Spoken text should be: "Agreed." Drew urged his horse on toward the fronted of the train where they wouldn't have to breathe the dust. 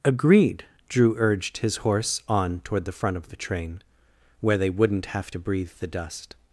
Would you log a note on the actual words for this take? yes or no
yes